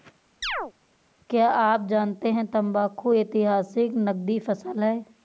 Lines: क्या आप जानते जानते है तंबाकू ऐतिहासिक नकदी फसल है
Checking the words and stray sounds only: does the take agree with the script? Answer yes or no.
no